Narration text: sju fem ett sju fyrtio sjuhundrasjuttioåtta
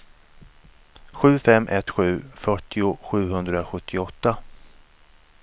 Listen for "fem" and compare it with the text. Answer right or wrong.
right